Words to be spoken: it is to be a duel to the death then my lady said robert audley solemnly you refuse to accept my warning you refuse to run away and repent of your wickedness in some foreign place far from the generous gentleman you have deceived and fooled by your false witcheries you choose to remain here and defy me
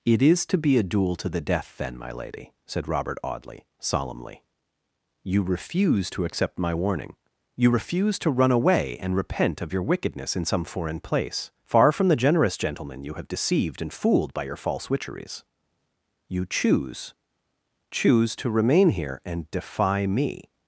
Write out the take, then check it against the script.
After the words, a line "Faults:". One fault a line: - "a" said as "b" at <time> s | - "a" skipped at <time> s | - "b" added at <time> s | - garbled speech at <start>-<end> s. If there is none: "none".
it is to be a duel to the death then my lady said robert audley solemnly you refuse to accept my warning you refuse to run away and repent of your wickedness in some foreign place far from the generous gentleman you have deceived and fooled by your false witcheries you choose choose to remain here and defy me
Faults:
- "choose" added at 17.9 s